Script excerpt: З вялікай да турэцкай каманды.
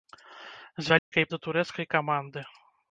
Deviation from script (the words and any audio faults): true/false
true